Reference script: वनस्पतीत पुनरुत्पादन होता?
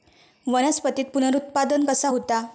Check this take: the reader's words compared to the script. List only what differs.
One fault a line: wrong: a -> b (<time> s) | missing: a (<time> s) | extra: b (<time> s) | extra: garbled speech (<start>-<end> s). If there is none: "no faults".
extra: कसा (1.8 s)